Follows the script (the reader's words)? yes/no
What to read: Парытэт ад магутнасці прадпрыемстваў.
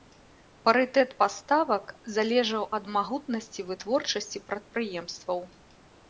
no